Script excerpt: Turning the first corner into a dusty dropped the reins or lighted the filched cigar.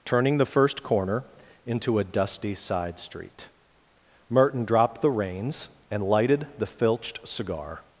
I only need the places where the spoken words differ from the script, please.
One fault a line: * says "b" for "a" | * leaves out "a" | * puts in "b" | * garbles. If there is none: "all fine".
* puts in "side street Merton"
* says "and" for "or"